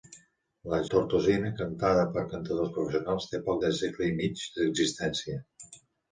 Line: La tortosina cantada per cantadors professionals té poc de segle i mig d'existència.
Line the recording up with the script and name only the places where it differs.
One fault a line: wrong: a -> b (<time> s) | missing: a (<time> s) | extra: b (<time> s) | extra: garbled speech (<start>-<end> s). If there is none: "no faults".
no faults